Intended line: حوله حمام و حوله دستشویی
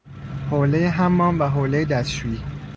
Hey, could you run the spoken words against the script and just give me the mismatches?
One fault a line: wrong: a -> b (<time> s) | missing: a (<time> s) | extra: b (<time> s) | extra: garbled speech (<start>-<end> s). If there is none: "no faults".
no faults